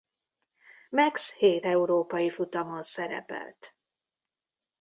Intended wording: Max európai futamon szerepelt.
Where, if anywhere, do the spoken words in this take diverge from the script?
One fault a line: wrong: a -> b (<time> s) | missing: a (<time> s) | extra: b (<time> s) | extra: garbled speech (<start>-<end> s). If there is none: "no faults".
extra: hét (1.4 s)